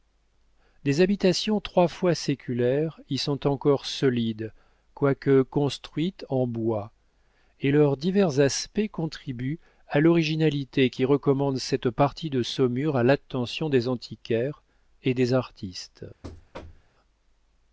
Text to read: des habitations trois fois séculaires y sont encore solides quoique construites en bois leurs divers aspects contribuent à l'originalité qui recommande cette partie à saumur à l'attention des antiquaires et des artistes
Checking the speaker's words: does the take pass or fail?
fail